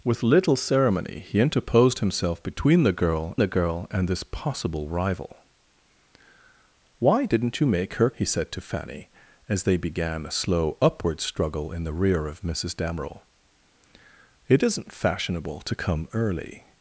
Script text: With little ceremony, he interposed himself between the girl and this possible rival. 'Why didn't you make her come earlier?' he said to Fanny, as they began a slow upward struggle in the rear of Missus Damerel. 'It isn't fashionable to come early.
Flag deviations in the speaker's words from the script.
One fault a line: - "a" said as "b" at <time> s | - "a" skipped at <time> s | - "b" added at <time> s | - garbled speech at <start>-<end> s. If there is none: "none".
- "the girl" added at 3.4 s
- "come earlier" skipped at 8.1 s